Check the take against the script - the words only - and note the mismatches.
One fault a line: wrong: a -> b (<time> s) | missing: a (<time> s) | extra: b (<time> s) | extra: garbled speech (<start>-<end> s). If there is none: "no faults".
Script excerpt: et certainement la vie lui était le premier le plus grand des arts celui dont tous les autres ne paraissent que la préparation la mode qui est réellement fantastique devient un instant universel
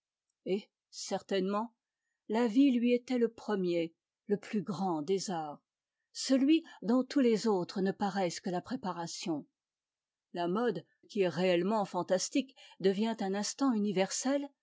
no faults